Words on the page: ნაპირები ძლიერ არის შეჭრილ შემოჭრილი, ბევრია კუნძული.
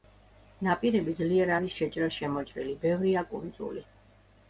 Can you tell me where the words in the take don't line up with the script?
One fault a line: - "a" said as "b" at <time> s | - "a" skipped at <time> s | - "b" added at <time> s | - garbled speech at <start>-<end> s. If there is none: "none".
none